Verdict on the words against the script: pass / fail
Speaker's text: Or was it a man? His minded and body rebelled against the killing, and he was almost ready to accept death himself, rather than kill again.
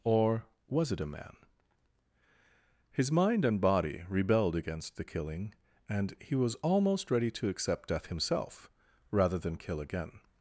fail